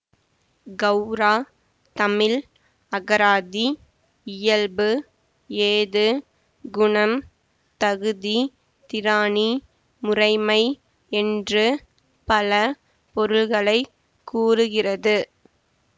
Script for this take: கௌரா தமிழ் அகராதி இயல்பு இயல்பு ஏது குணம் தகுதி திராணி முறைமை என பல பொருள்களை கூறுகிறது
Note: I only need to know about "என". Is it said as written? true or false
false